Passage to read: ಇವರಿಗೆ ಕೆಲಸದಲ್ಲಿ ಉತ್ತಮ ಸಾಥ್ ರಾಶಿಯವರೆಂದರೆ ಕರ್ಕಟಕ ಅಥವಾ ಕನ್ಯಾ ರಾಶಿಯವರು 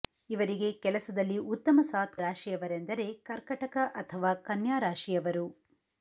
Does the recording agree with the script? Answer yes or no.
yes